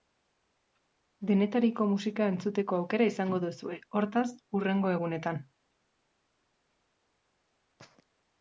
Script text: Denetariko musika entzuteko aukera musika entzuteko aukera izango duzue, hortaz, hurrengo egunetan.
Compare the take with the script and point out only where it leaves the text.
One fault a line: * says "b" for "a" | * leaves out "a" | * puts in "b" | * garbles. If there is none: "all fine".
* leaves out "musika entzuteko aukera"